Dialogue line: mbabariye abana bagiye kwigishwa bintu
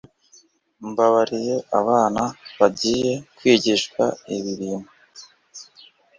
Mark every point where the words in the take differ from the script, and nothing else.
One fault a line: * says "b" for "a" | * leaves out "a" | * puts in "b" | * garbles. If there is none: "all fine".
* puts in "ibi"